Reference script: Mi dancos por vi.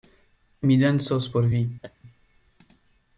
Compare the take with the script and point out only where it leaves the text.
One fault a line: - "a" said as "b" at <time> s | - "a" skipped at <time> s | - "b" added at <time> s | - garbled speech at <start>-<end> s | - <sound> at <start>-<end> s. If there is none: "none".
- laugh at 1.8-2.0 s